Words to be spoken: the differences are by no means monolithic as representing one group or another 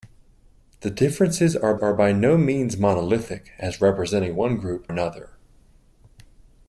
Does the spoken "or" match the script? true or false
false